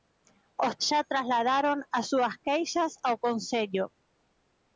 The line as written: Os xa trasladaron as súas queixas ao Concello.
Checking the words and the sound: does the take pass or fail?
pass